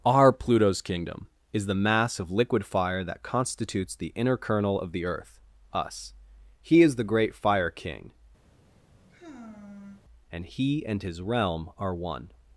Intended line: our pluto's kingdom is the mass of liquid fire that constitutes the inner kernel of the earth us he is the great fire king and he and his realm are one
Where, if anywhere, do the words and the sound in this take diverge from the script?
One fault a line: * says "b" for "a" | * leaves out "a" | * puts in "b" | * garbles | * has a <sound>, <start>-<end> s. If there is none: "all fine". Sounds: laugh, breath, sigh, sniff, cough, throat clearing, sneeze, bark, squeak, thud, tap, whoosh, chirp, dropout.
* has a sigh, 8.5-10.0 s